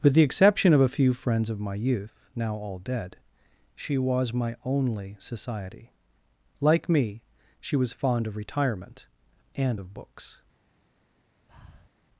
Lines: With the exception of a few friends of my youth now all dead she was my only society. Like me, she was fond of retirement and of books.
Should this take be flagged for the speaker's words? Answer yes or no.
no